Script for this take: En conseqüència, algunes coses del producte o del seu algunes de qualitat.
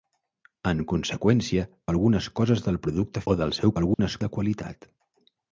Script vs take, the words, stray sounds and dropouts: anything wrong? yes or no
yes